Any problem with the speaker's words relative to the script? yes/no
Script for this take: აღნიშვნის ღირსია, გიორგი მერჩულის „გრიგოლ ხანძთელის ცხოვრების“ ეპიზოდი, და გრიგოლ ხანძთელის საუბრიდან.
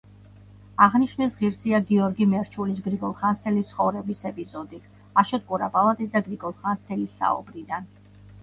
yes